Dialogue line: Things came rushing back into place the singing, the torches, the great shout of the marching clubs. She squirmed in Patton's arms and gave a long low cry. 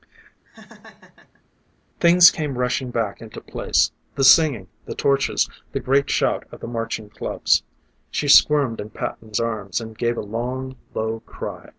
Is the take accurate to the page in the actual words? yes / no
yes